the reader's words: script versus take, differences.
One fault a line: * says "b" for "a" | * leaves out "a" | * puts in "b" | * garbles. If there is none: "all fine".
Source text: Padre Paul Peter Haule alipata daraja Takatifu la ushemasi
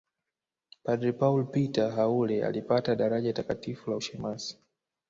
all fine